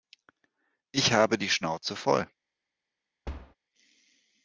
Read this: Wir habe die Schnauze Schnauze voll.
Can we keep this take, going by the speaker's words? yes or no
no